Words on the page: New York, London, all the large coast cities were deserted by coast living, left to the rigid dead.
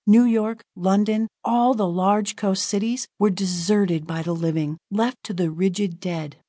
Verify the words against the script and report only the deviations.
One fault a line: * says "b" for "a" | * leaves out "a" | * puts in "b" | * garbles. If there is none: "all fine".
* says "the" for "coast"